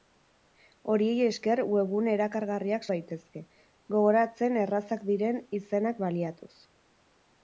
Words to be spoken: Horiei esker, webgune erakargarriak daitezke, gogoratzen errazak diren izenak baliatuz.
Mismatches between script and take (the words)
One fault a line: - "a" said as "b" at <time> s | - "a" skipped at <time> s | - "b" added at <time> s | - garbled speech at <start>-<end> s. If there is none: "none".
none